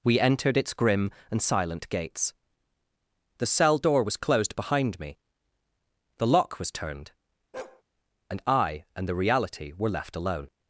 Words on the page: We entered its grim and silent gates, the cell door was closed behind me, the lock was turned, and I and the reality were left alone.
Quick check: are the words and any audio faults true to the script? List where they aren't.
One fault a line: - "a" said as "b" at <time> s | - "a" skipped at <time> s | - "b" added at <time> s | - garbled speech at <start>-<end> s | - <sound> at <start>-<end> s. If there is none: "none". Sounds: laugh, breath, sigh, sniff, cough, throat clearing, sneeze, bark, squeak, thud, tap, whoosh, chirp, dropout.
- bark at 7.5-7.8 s